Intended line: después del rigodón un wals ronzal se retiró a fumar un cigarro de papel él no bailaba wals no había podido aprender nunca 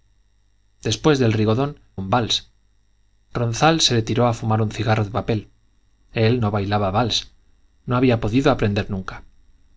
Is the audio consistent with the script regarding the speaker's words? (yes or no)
yes